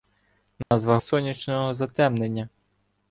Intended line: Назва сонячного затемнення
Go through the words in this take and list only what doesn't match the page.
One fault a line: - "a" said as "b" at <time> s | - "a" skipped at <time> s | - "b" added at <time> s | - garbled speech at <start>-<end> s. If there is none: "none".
none